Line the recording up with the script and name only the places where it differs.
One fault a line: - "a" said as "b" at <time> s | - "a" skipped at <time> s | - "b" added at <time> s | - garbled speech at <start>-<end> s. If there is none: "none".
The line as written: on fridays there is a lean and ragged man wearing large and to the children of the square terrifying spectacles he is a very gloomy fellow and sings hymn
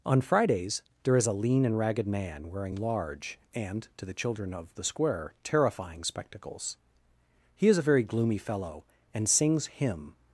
none